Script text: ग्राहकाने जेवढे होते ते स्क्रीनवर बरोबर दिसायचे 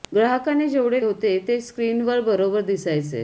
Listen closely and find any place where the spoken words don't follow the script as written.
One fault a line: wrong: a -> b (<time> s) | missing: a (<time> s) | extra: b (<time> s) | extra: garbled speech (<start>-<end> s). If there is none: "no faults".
no faults